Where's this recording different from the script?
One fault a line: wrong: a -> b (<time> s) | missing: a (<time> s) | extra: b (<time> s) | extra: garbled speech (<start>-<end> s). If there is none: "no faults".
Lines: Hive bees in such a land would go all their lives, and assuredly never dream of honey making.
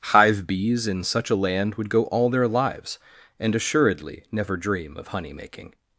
no faults